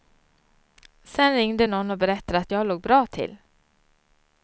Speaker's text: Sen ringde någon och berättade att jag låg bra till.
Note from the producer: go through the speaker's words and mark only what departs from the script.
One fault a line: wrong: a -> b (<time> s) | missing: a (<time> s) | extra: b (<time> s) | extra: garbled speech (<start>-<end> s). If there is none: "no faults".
no faults